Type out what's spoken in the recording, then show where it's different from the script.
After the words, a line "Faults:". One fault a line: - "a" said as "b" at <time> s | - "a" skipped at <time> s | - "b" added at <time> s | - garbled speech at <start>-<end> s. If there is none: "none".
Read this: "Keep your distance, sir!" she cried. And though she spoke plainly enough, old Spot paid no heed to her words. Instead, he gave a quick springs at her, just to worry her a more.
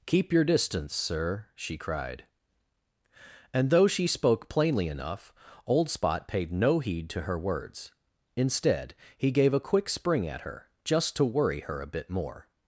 "Keep your distance, sir!" she cried. And though she spoke plainly enough, old Spot paid no heed to her words. Instead, he gave a quick spring at her, just to worry her a bit more.
Faults:
- "springs" said as "spring" at 9.9 s
- "bit" added at 11.9 s